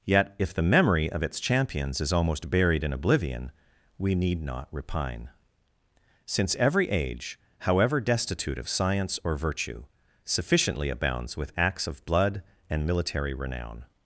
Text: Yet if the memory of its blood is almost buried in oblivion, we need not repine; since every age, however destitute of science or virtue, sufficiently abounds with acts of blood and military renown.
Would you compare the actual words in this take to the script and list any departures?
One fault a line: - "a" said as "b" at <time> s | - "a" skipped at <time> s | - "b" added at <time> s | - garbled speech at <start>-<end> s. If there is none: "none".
- "blood" said as "champions" at 1.4 s